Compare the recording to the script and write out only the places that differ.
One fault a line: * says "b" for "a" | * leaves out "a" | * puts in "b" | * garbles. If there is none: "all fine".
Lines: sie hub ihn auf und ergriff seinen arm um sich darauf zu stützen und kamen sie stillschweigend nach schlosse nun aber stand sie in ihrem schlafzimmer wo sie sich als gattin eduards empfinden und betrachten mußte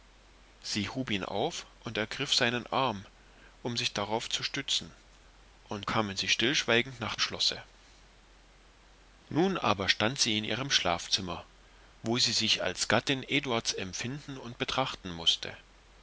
all fine